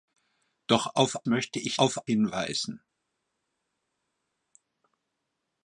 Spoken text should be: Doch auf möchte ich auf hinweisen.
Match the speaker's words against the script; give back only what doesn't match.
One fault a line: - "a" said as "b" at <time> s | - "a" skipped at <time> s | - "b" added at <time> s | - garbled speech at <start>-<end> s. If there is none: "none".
none